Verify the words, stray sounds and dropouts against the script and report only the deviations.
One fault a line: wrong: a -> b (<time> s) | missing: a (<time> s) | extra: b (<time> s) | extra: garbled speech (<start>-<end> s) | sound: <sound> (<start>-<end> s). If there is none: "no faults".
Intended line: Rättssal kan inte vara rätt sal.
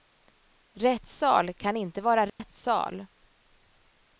sound: dropout (2.3-2.4 s)